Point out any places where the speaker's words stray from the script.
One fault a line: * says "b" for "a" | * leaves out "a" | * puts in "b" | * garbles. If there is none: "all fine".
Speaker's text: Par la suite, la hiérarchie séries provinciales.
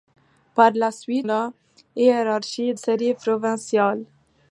all fine